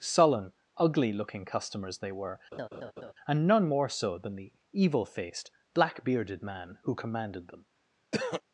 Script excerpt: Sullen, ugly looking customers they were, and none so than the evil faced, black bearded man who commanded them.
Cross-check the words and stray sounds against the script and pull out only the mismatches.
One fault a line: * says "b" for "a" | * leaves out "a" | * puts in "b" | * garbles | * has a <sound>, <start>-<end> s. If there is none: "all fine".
* has a laugh, 2.5-3.1 s
* puts in "more"
* has a throat clearing, 8.1-8.4 s